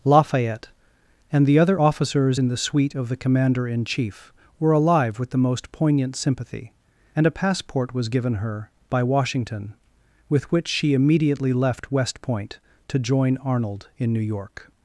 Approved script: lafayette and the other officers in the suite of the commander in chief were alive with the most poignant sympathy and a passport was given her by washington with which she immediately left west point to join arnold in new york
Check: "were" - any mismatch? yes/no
no